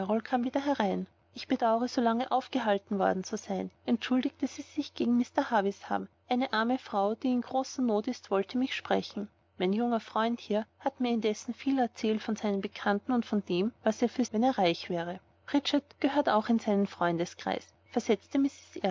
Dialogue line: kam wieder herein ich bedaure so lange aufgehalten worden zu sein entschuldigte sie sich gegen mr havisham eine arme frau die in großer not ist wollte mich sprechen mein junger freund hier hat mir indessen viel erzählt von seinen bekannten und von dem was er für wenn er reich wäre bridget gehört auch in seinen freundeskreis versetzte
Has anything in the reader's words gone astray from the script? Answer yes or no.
no